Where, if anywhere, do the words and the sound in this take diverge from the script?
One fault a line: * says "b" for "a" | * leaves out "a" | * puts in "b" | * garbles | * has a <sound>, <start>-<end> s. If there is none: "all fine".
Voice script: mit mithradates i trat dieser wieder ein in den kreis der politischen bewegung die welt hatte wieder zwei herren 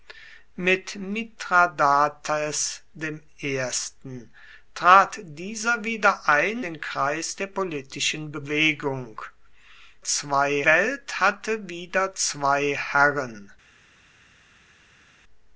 * leaves out "in"
* says "zwei" for "die"